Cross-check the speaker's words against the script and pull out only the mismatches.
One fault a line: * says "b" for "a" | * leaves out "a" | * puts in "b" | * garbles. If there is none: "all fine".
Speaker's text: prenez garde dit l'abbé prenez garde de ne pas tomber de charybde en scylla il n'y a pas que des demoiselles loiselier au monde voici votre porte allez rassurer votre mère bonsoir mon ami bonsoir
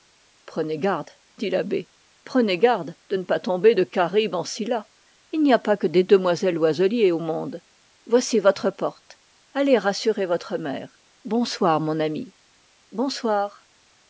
all fine